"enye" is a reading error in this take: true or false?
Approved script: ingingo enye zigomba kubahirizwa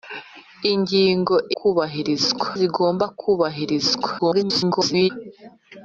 true